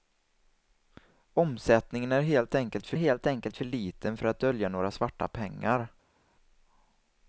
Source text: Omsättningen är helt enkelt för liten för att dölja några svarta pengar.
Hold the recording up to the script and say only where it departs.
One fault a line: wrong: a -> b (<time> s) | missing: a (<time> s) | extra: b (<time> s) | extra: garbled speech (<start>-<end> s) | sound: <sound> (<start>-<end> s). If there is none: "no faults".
extra: helt enkelt för (2.9 s)